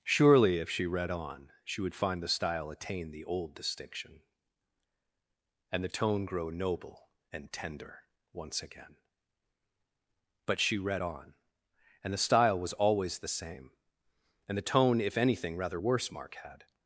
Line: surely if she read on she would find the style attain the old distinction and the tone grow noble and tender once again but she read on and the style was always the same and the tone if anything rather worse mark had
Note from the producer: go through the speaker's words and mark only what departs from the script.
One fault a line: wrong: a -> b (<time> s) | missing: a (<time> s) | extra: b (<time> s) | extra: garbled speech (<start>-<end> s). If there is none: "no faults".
no faults